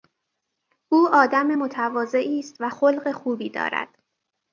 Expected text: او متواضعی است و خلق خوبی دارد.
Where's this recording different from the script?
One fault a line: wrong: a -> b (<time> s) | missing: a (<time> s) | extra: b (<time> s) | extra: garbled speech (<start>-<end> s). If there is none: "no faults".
extra: آدم (1.1 s)